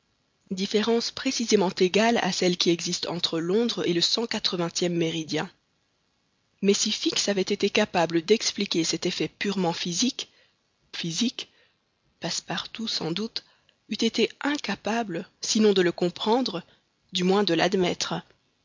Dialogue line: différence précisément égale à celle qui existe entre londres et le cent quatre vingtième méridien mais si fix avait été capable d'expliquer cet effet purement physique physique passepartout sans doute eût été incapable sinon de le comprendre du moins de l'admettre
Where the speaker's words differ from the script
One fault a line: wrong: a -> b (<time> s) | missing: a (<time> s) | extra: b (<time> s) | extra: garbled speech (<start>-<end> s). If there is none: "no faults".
no faults